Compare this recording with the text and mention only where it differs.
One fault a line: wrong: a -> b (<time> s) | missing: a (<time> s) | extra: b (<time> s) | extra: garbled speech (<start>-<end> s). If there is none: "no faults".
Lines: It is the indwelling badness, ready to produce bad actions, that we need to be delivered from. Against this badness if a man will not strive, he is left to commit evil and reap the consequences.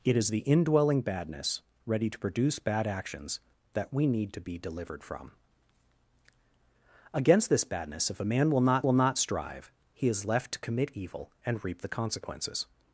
extra: will not (8.8 s)